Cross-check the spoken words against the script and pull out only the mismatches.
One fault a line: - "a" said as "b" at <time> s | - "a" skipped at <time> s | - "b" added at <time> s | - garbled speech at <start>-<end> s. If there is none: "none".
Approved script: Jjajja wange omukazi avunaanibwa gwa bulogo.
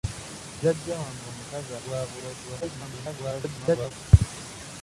- "avunaanibwa" skipped at 1.7 s
- garbled speech at 2.6-3.9 s